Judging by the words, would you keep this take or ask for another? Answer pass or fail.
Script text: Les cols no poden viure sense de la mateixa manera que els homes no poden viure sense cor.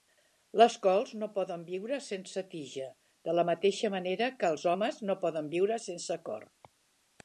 fail